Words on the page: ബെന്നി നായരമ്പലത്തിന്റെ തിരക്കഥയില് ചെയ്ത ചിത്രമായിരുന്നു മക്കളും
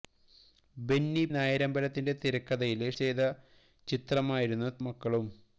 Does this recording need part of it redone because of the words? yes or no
no